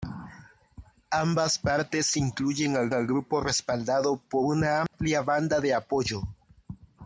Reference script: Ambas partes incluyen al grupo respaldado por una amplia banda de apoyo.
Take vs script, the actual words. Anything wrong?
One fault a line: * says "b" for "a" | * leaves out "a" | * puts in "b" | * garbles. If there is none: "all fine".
* puts in "al"